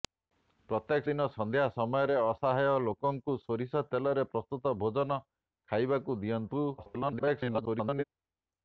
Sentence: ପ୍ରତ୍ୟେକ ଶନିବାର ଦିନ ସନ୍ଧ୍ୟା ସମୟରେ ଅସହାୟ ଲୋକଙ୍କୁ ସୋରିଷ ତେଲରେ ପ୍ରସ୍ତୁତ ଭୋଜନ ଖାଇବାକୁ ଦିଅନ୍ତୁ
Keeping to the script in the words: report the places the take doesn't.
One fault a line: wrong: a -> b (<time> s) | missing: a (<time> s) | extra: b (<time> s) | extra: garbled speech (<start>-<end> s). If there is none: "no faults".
missing: ଶନିବାର (1.1 s)
extra: garbled speech (6.8-8.0 s)